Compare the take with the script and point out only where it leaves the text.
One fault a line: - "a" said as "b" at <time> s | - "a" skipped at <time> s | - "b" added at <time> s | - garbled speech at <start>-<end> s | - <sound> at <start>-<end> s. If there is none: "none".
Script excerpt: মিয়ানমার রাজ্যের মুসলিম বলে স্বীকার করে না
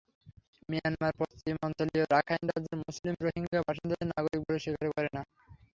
- "পশ্চিমাঞ্চলীয় রাখাইন" added at 1.2 s
- "রোহিঙ্গা বাসিন্দাদের নাগরিক" added at 3.2 s